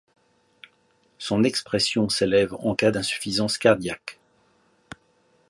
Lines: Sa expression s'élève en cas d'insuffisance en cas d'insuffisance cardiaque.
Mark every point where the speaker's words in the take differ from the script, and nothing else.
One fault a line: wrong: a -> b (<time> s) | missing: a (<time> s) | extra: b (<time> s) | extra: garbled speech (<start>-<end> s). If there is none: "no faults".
wrong: Sa -> Son (1.2 s)
missing: en cas d'insuffisance (3.6 s)